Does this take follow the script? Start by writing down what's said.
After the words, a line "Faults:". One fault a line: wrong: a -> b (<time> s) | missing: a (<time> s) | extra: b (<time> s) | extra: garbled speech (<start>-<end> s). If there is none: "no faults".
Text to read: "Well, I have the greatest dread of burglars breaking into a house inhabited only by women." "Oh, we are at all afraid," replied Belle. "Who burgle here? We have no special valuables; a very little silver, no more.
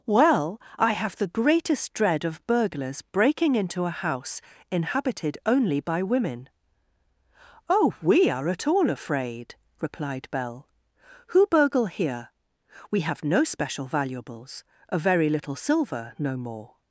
"Well, I have the greatest dread of burglars breaking into a house inhabited only by women." "Oh, we are at all afraid," replied Belle. "Who burgle here? We have no special valuables; a very little silver, no more.
Faults:
no faults